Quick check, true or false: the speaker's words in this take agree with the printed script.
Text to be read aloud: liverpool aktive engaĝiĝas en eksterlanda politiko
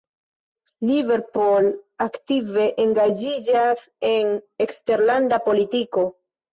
true